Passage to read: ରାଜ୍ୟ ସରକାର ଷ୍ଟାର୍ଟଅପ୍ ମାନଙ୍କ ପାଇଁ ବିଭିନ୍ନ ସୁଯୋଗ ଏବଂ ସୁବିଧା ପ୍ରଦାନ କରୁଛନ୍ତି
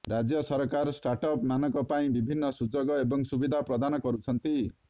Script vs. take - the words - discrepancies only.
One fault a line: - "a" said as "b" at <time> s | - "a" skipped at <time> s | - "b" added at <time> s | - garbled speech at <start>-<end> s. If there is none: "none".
none